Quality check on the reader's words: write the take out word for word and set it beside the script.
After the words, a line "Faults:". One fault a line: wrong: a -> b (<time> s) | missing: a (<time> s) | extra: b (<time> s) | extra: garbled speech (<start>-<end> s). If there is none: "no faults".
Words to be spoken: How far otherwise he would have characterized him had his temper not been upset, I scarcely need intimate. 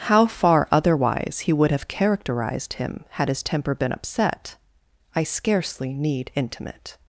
How far otherwise he would have characterized him had his temper been upset, I scarcely need intimate.
Faults:
missing: not (3.8 s)